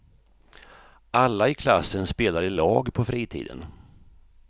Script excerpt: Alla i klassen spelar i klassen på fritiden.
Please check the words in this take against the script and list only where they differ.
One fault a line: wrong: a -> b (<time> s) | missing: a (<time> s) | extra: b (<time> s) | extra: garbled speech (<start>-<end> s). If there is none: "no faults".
wrong: klassen -> lag (2.5 s)